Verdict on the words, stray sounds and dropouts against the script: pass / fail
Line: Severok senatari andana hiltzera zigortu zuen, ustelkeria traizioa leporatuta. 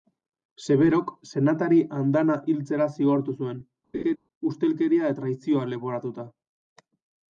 fail